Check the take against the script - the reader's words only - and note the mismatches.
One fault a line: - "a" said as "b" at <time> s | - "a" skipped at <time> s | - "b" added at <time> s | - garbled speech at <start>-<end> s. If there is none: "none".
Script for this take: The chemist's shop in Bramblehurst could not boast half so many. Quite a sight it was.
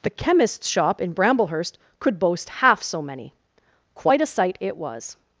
- "not" skipped at 2.2 s